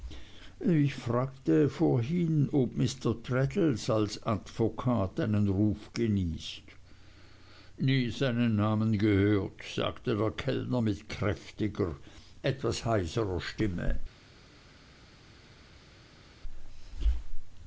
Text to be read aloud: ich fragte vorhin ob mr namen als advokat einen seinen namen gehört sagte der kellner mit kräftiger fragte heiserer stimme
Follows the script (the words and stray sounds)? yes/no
no